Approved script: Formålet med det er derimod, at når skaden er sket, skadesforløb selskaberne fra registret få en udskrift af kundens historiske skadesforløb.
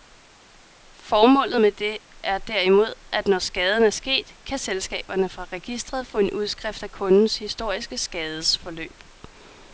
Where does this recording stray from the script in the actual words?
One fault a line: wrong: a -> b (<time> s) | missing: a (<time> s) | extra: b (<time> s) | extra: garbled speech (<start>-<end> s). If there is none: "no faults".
wrong: skadesforløb -> kan (4.4 s)